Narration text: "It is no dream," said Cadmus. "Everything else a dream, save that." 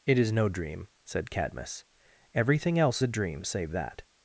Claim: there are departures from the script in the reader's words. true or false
false